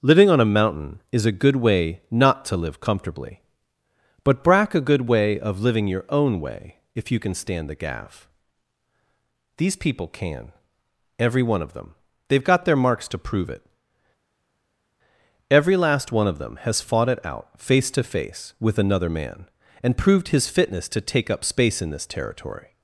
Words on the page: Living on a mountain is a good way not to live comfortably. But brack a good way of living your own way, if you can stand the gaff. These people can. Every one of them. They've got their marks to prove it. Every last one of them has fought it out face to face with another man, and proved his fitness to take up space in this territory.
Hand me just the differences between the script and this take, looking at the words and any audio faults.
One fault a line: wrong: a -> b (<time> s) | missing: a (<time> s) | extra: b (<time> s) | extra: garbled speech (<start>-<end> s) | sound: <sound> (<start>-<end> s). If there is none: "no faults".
no faults